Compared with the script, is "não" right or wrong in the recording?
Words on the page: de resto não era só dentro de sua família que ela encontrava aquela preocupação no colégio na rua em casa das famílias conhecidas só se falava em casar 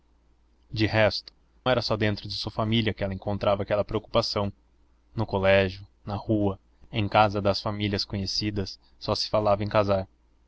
wrong